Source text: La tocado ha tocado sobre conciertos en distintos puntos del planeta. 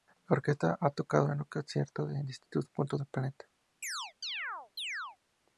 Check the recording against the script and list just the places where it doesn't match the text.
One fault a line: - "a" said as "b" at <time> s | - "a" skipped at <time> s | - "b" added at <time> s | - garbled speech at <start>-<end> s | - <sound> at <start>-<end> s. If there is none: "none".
- "tocado" said as "orquesta" at 0.3 s
- "sobre" said as "en" at 1.3 s
- chirp at 3.8-5.2 s